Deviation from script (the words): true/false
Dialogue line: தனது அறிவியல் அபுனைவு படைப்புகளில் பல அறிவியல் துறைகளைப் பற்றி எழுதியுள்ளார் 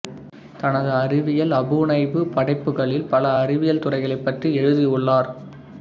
false